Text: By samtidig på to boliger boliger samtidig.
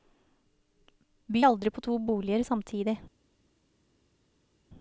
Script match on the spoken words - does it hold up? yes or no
no